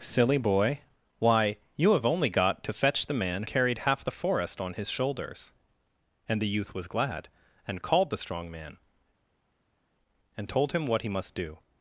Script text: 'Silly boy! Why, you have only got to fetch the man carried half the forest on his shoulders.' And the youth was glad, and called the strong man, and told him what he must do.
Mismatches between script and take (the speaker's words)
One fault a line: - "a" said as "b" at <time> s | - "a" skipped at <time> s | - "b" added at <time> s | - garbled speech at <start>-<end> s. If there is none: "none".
none